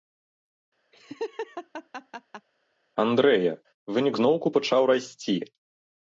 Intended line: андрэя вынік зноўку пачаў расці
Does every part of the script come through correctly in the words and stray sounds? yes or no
no